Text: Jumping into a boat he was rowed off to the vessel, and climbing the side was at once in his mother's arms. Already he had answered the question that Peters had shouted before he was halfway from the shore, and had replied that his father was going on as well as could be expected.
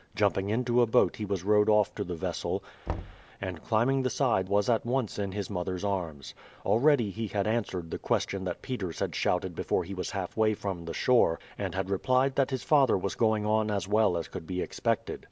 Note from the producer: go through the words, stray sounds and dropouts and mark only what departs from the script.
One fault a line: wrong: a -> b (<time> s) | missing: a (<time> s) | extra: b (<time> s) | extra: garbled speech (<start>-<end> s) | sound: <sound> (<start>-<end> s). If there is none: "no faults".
sound: thud (2.9-3.2 s)